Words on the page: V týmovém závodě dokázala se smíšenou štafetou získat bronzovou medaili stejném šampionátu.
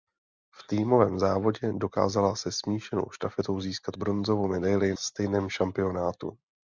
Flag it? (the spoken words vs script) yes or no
no